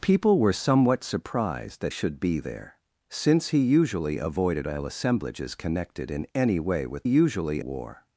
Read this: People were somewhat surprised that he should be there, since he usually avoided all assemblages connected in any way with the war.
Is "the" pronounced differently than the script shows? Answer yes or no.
yes